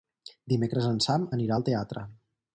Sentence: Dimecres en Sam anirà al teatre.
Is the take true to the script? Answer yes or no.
yes